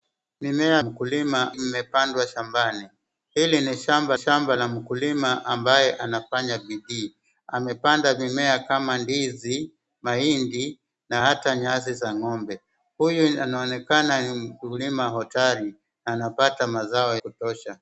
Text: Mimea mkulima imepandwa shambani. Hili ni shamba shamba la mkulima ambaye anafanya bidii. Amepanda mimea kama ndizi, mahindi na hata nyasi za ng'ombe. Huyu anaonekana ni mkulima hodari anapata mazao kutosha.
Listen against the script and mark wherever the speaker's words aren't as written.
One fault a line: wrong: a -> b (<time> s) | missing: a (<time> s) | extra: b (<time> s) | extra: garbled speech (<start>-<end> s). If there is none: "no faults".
no faults